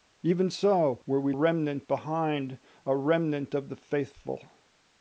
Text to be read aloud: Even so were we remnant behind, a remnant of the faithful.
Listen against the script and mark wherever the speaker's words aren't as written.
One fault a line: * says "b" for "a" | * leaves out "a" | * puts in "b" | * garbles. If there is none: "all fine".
all fine